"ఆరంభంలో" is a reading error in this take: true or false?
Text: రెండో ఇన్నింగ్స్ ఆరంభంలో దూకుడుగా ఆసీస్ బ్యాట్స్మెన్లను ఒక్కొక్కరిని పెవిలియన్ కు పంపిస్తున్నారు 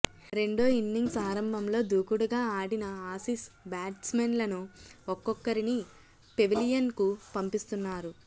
false